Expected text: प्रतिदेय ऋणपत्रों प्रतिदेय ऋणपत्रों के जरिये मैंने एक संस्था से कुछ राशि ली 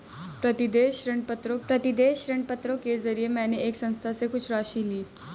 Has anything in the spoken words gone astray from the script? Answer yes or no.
no